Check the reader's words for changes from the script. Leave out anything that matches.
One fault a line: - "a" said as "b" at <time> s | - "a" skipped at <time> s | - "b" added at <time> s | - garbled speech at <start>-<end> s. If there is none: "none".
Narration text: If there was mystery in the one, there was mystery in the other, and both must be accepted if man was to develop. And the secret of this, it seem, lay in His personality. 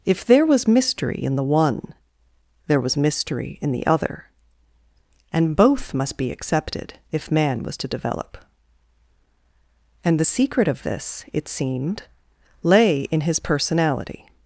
- "seem" said as "seemed" at 11.5 s